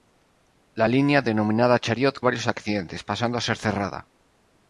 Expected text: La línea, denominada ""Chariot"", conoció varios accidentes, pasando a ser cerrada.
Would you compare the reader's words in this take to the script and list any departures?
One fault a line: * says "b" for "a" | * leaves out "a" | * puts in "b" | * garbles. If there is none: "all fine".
* leaves out "conoció"